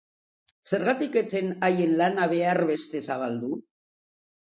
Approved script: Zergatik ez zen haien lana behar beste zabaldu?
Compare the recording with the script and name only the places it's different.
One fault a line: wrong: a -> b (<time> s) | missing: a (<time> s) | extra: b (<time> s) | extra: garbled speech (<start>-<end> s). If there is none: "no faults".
no faults